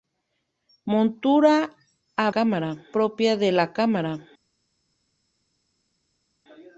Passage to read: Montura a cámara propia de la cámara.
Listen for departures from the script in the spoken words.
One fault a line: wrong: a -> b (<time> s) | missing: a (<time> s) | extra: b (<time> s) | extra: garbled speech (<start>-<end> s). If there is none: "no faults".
no faults